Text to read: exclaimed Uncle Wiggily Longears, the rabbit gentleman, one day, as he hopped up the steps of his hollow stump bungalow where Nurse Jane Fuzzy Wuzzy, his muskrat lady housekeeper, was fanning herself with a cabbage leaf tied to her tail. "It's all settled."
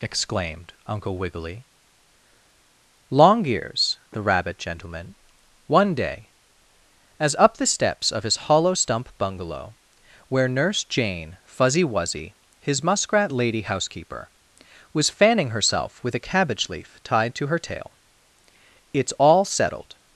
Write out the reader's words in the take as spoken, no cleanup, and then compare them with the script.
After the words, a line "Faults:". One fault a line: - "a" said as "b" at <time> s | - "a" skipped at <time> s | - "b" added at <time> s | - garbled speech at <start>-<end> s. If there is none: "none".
exclaimed Uncle Wiggily Longears, the rabbit gentleman, one day, as up the steps of his hollow stump bungalow where Nurse Jane Fuzzy Wuzzy, his muskrat lady housekeeper, was fanning herself with a cabbage leaf tied to her tail. "It's all settled."
Faults:
- "he hopped" skipped at 7.3 s